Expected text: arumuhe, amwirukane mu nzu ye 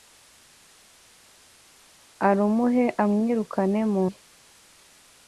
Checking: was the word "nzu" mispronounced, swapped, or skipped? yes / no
yes